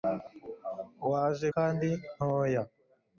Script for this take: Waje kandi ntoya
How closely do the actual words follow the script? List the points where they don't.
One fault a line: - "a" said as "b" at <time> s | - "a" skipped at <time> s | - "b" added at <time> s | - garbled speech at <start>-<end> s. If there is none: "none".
none